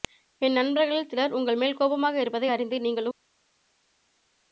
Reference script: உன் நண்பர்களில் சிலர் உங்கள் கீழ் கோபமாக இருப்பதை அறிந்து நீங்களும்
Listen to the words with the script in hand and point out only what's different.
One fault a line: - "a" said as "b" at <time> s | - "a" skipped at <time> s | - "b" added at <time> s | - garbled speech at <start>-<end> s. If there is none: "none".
- "உன்" said as "என்" at 0.4 s
- "கீழ்" said as "மேல்" at 1.6 s